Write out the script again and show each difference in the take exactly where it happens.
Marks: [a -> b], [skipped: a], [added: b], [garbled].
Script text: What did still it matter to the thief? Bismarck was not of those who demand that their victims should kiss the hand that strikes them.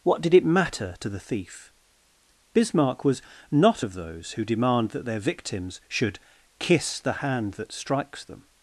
What did [skipped: still] it matter to the thief? Bismarck was not of those who demand that their victims should kiss the hand that strikes them.